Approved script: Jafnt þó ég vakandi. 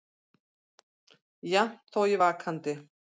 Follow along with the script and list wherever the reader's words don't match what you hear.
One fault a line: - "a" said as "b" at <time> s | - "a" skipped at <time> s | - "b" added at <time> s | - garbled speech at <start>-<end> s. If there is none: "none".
none